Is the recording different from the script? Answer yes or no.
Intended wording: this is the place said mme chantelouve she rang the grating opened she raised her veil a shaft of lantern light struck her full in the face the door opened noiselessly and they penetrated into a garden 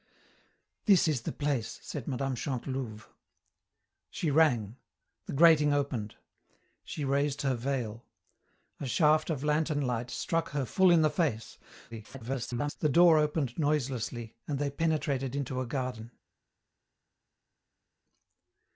yes